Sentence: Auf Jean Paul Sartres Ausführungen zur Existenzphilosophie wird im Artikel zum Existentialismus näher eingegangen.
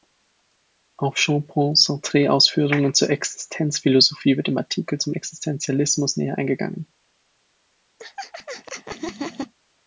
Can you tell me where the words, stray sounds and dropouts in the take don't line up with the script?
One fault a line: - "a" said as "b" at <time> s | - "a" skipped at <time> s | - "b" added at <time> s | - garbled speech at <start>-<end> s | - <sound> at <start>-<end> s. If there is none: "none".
- laugh at 8.0-9.5 s